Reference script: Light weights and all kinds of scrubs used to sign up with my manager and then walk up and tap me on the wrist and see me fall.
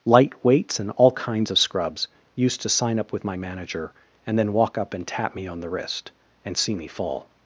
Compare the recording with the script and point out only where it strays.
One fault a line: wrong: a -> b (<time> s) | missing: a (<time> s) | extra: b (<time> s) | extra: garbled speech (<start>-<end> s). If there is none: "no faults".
no faults